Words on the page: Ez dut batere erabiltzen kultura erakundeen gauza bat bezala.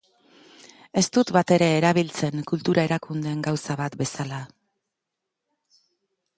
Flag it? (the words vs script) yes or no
no